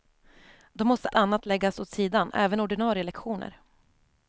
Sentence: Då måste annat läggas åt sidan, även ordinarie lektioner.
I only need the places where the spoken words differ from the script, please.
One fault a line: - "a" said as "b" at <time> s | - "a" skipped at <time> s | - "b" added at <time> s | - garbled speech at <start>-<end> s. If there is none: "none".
none